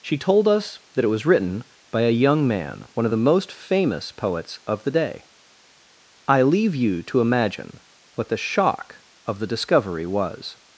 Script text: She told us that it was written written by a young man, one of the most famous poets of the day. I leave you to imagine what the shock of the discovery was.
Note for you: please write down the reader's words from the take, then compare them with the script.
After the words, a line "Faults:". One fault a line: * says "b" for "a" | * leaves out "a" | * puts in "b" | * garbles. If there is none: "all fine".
She told us that it was written by a young man, one of the most famous poets of the day. I leave you to imagine what the shock of the discovery was.
Faults:
* leaves out "written"